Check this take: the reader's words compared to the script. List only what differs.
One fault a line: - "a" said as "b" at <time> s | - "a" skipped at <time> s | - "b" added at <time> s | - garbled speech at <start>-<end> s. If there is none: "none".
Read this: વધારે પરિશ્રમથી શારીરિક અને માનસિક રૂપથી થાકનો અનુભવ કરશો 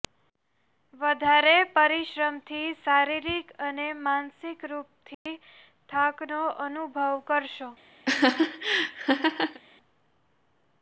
none